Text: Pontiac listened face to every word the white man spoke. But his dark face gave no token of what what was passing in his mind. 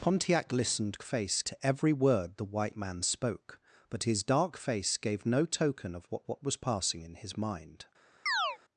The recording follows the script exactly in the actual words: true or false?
true